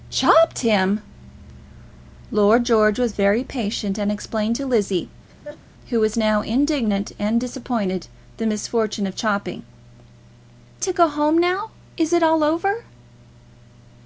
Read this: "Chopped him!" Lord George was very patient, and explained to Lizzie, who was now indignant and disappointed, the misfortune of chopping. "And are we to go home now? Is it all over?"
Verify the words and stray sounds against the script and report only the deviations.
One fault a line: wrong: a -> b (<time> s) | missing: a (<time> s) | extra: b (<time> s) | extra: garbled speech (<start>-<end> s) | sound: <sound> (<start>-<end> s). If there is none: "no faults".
sound: laugh (5.3-5.6 s)
missing: And are we (9.6 s)